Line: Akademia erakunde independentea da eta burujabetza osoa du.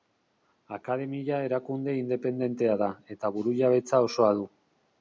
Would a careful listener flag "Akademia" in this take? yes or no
no